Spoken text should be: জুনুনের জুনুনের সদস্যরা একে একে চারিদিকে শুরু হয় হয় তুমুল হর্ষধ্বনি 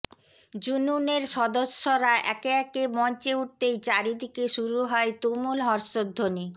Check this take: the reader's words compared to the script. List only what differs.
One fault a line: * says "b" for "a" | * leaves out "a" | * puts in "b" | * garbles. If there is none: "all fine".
* leaves out "জুনুনের"
* puts in "মঞ্চে উঠতেই"
* leaves out "হয়"